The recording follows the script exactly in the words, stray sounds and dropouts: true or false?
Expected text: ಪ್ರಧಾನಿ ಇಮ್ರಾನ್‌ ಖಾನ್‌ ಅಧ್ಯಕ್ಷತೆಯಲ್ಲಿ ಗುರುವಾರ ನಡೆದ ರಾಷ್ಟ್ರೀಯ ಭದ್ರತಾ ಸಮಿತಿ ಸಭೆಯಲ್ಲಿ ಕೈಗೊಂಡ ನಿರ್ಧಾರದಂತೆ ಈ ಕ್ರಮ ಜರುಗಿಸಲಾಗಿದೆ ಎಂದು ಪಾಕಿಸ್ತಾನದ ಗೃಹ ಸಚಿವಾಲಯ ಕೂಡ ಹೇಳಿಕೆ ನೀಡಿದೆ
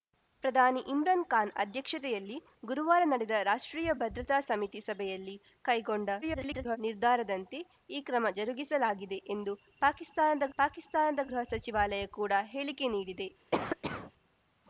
false